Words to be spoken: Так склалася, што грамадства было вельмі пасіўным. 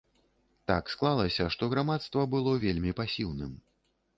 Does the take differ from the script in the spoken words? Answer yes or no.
no